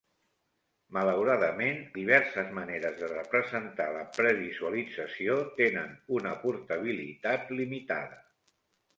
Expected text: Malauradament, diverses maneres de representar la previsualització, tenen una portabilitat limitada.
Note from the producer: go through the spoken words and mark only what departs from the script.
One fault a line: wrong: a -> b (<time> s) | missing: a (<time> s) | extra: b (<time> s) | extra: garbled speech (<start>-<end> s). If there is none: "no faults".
no faults